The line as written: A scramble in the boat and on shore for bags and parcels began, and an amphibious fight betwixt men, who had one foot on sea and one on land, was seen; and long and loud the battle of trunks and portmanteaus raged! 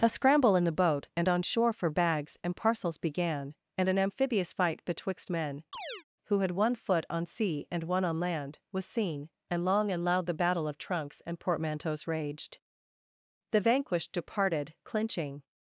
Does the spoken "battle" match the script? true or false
true